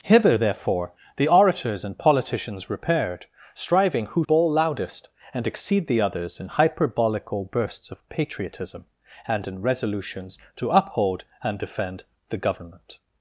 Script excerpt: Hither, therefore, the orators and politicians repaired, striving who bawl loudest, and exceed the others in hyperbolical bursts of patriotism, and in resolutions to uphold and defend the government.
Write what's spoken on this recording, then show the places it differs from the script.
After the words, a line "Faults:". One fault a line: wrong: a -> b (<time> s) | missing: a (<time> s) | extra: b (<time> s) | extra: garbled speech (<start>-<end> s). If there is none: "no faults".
Hither, therefore, the orators and politicians repaired, striving who bawl loudest, and exceed the others in hyperbolical bursts of patriotism, and in resolutions to uphold and defend the government.
Faults:
no faults